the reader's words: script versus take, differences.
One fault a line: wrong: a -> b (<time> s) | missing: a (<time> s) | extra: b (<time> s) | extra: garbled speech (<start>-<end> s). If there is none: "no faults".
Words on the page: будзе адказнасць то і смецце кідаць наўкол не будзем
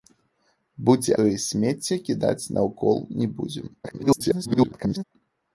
missing: адказнасць (1.1 s)
extra: garbled speech (3.8-5.0 s)